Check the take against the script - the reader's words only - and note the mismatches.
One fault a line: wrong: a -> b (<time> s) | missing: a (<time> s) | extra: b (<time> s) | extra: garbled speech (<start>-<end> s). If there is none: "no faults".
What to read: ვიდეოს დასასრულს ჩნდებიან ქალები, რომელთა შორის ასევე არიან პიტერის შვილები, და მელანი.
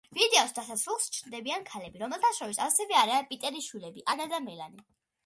extra: ანა (4.1 s)